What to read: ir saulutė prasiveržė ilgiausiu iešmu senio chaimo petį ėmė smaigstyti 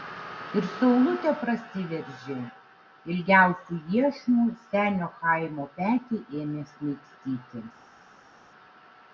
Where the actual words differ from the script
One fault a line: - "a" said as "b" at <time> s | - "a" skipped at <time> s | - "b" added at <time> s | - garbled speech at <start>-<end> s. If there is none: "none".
none